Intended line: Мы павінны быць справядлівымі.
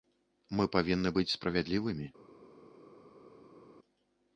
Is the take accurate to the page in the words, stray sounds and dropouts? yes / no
yes